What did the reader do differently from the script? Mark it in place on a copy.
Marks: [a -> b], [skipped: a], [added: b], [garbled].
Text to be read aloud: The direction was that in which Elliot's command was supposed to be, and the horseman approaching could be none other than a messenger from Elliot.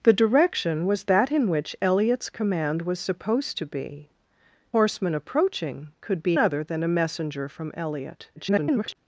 The direction was that in which Elliot's command was supposed to be, [skipped: and the] horseman approaching could be [skipped: none] other than a messenger from Elliot. [garbled]